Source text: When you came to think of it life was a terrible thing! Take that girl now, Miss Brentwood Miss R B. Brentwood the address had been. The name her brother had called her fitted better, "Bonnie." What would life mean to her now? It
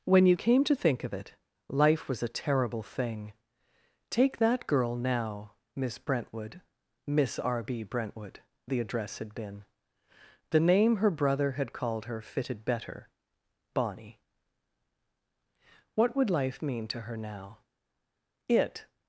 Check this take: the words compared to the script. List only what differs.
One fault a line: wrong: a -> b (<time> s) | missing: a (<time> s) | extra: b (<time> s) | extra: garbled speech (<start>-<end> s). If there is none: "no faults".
no faults